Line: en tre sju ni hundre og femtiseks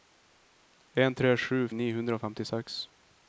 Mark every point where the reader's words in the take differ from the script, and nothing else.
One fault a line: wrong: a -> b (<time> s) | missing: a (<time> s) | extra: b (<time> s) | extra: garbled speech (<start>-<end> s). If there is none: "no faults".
no faults